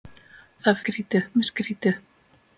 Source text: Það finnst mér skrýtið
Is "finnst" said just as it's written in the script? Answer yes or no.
no